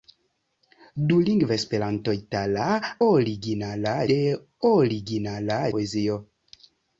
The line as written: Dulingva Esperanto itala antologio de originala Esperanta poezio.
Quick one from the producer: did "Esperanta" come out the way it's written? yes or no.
no